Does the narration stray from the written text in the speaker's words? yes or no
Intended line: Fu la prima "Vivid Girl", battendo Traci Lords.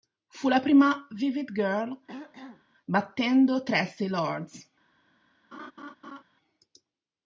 no